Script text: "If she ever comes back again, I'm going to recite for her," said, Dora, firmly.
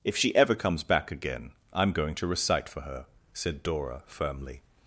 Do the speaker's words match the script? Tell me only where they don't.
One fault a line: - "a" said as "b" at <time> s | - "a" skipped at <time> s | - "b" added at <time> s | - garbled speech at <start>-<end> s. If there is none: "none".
none